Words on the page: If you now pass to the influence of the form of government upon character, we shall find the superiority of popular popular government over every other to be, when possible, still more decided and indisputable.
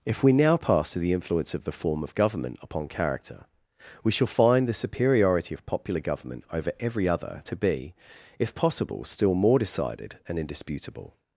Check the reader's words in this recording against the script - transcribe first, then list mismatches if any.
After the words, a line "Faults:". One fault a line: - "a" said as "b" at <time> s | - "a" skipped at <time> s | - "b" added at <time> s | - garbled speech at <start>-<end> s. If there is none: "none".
If we now pass to the influence of the form of government upon character, we shall find the superiority of popular government over every other to be, if possible, still more decided and indisputable.
Faults:
- "you" said as "we" at 0.2 s
- "popular" skipped at 6.0 s
- "when" said as "if" at 8.4 s